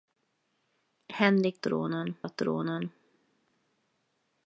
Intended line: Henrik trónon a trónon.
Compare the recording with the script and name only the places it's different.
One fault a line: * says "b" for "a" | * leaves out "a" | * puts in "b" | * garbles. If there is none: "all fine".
all fine